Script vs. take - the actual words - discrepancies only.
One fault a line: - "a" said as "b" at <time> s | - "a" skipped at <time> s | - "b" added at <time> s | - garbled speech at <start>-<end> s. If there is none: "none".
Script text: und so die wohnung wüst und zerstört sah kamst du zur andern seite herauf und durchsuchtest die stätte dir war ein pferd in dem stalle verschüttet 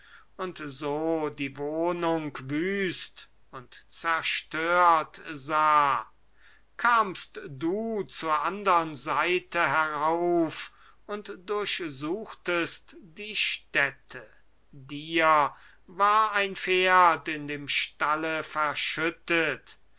none